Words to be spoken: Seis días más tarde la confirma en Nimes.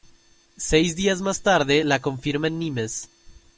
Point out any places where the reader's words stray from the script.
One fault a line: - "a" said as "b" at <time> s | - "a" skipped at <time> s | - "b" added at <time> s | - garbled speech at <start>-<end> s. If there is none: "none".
none